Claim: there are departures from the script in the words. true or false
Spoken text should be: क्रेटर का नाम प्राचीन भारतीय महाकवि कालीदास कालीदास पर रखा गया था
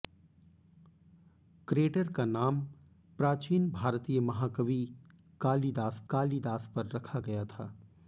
false